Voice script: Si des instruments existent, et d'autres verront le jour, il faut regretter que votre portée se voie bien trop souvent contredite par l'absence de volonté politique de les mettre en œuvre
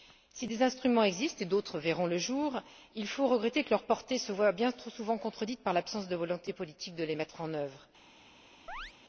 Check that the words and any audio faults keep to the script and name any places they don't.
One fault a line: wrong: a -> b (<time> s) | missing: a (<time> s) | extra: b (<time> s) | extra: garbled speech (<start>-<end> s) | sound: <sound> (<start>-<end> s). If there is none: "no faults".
wrong: votre -> leur (3.7 s)
sound: chirp (8.7-8.9 s)